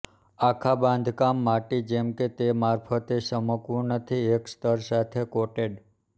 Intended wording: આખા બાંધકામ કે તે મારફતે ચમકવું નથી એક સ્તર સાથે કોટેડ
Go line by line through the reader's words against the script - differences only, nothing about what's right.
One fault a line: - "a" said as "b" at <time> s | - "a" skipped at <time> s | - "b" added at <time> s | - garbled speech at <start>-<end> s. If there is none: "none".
- "માટી જેમ" added at 1.5 s